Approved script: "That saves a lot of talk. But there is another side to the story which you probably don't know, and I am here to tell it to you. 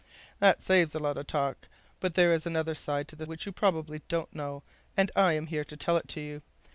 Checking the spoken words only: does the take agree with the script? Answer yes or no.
no